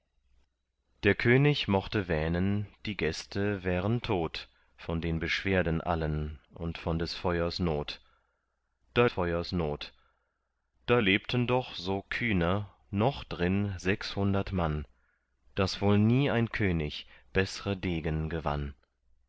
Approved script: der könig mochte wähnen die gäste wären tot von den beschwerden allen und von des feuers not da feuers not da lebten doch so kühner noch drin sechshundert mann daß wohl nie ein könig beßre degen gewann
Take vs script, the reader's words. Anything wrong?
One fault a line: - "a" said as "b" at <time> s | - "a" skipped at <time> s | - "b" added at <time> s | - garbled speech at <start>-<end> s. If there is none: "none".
none